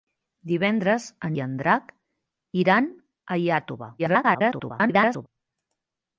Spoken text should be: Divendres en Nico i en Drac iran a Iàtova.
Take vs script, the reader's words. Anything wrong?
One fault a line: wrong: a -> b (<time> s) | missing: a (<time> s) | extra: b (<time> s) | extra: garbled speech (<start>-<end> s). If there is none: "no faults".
missing: Nico (1.4 s)
extra: garbled speech (4.0-5.3 s)